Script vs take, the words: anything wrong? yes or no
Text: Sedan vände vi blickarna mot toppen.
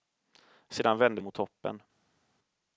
yes